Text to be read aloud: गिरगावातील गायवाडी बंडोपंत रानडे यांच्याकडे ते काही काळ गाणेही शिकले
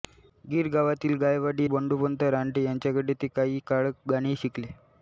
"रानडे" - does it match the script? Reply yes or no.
yes